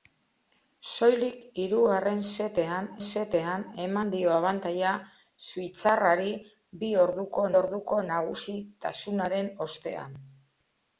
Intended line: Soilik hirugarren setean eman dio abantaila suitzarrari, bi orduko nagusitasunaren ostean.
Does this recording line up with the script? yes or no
no